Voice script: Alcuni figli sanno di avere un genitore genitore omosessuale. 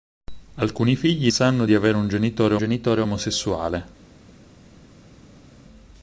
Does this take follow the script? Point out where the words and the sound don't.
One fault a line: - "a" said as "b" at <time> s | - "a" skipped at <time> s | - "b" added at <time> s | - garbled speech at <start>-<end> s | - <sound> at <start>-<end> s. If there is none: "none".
none